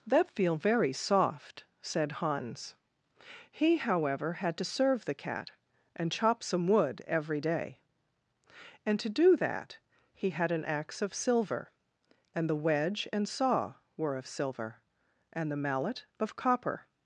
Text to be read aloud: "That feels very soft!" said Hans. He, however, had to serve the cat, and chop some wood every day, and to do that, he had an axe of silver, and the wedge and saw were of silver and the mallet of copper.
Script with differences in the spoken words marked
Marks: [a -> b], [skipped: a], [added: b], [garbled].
"That [feels -> feel] very soft!" said Hans. He, however, had to serve the cat, and chop some wood every day, and to do that, he had an axe of silver, and the wedge and saw were of silver and the mallet of copper.